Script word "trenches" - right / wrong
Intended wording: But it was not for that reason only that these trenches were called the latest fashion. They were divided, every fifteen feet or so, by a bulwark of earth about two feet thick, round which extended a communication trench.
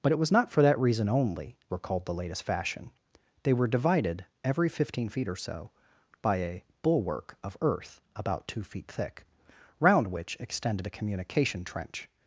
wrong